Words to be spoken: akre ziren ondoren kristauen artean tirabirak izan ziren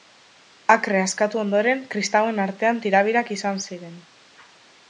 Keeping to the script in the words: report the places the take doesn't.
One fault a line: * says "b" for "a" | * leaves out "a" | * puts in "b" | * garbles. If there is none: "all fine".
* says "askatu" for "ziren"